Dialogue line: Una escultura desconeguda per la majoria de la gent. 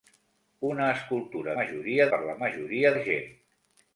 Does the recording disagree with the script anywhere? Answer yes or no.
yes